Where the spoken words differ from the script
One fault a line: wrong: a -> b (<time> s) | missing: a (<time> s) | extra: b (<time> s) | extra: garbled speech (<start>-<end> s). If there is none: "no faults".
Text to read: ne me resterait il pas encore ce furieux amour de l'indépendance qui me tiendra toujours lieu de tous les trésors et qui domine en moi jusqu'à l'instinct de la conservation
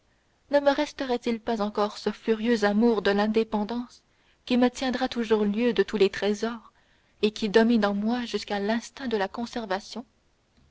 no faults